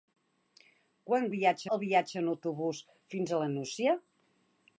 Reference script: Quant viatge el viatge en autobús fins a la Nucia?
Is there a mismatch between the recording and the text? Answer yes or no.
no